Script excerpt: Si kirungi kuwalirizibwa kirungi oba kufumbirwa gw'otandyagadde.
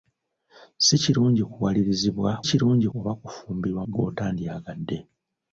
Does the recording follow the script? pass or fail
pass